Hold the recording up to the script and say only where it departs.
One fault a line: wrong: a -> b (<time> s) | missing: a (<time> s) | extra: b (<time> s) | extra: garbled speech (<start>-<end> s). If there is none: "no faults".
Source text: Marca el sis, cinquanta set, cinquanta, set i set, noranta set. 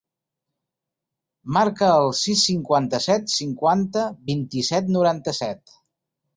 wrong: set -> vint (4.3 s)